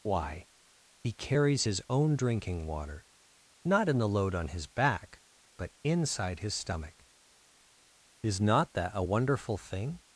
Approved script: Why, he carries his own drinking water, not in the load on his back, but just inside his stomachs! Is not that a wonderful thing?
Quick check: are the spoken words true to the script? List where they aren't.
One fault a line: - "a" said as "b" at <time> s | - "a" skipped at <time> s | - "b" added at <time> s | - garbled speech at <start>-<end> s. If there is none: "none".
- "just" skipped at 5.7 s
- "stomachs" said as "stomach" at 6.5 s